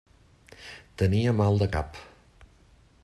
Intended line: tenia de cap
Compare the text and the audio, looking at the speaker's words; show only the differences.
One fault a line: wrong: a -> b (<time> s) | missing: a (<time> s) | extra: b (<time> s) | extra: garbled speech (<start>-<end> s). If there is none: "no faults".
extra: mal (1.4 s)